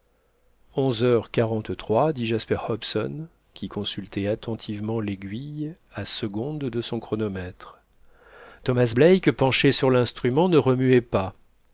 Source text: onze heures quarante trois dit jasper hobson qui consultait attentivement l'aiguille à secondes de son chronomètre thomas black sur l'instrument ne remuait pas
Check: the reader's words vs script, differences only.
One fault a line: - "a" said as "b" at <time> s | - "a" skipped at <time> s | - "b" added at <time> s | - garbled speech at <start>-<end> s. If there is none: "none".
- "penché" added at 9.3 s